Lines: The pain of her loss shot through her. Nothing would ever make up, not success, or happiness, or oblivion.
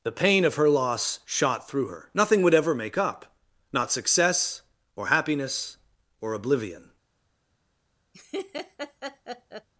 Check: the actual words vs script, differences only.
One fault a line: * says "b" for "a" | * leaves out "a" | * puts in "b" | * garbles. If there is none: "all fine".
all fine